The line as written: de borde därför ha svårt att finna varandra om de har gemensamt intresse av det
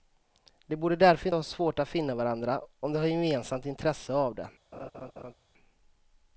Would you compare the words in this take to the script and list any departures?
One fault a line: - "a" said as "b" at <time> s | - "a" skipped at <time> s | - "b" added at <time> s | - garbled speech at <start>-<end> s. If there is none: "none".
none